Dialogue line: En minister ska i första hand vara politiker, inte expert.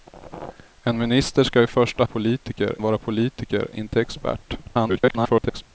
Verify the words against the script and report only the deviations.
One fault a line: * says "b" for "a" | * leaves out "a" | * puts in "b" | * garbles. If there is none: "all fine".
* says "politiker" for "hand"
* garbles